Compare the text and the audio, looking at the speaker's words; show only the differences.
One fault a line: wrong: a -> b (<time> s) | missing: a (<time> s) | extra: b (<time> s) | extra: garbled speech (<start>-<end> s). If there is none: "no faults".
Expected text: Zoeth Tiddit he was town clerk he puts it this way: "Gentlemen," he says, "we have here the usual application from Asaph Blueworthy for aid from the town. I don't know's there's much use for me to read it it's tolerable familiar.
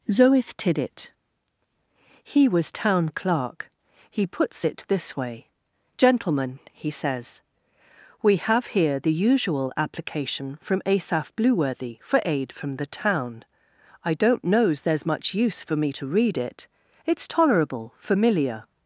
no faults